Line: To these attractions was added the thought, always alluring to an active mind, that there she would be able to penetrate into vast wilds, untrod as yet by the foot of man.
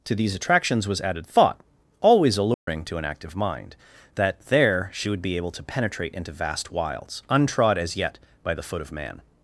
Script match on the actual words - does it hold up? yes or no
no